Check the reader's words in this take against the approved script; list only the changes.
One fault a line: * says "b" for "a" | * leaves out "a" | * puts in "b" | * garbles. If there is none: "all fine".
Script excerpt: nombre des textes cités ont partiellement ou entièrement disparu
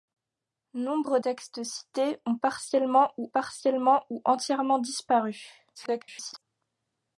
* leaves out "des"
* puts in "partiellement ou"
* garbles